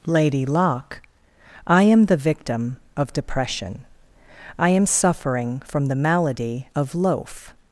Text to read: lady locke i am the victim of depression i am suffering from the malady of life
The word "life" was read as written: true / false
false